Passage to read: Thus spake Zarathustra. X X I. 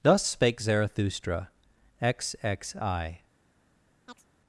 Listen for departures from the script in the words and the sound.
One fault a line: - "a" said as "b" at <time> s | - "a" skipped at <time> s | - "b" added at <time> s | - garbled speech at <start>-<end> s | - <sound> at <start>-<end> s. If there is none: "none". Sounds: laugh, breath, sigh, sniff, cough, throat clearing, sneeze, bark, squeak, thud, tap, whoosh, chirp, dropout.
- chirp at 4.1-4.3 s